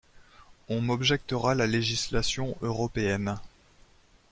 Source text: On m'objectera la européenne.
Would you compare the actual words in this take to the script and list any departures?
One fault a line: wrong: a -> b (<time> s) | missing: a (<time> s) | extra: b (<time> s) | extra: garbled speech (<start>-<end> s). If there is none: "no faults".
extra: législation (1.7 s)